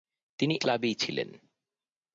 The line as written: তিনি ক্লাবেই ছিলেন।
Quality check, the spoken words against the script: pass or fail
pass